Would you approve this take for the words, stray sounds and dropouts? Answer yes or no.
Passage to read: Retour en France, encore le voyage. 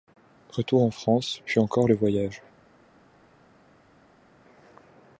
no